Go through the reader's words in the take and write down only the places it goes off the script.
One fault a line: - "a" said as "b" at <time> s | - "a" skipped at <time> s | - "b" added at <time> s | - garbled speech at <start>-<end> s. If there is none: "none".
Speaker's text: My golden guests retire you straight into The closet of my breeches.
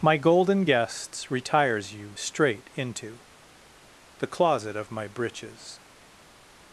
- "retire" said as "retires" at 1.3 s